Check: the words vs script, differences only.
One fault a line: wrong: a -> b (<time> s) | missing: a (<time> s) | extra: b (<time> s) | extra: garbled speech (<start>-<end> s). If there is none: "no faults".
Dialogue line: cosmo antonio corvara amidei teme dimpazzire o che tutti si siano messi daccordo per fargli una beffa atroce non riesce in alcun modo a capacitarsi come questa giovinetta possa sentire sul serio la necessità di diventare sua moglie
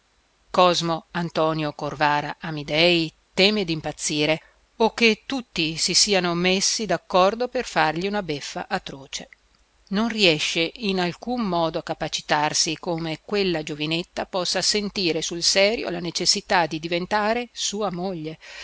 wrong: questa -> quella (13.2 s)